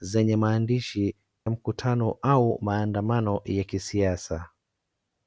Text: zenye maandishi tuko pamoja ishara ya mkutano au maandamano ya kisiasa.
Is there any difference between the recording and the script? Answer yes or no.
yes